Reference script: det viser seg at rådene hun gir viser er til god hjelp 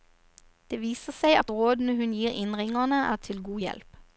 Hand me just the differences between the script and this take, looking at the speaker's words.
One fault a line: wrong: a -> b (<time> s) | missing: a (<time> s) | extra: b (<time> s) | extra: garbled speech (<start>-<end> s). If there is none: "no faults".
wrong: viser -> innringerne (2.3 s)